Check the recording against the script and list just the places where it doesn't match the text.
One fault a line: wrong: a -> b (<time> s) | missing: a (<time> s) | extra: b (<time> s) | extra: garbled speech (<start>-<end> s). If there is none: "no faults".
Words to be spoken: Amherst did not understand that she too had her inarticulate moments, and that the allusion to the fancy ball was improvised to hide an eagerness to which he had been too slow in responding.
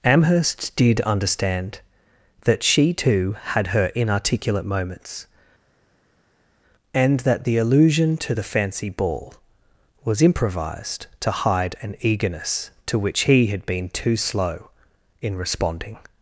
missing: not (1.0 s)